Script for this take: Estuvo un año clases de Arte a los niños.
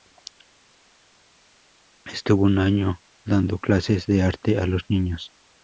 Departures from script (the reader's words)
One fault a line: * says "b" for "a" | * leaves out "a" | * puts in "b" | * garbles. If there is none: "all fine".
* puts in "dando"